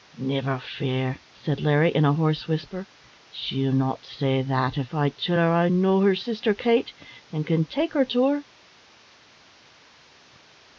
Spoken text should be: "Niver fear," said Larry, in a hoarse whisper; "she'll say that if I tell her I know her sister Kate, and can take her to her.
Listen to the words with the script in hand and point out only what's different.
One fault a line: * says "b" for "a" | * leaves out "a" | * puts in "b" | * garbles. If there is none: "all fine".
* puts in "not"